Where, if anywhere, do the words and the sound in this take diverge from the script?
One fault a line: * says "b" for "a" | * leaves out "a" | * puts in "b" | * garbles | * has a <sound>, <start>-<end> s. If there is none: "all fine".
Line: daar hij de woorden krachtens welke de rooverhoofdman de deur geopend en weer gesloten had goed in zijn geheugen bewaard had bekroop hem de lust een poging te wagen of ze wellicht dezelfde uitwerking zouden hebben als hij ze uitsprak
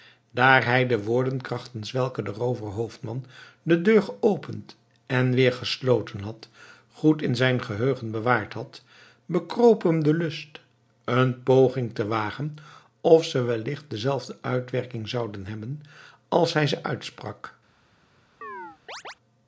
* has a chirp, 18.4-19.1 s